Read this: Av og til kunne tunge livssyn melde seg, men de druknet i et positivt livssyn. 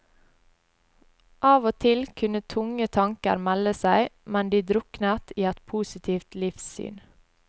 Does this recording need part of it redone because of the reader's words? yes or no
yes